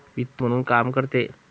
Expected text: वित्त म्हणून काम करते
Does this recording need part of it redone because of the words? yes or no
no